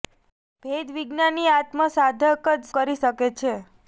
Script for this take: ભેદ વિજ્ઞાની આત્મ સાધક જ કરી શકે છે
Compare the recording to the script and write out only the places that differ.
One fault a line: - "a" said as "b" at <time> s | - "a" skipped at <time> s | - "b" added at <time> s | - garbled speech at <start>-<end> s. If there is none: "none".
none